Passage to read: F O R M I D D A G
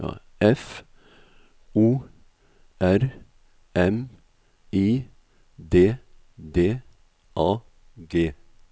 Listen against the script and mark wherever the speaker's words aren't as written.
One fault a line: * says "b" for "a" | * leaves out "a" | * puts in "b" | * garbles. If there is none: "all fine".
all fine